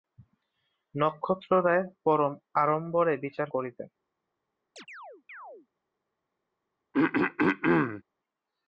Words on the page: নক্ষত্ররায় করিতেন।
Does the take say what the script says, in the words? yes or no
no